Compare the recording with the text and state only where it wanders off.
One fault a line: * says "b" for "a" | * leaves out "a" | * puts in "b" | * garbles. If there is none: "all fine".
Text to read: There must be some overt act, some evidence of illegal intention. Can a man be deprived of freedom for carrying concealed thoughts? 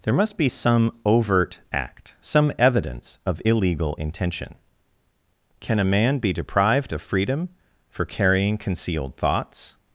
all fine